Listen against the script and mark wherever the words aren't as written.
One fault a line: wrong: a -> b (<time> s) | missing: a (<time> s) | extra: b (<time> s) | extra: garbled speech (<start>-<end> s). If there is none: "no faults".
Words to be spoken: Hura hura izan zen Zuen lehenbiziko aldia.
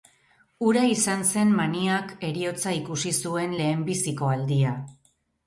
missing: hura (0.8 s)
extra: Maniak heriotza ikusi (1.6 s)